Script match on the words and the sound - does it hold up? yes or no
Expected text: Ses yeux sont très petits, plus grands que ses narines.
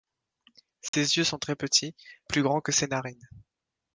no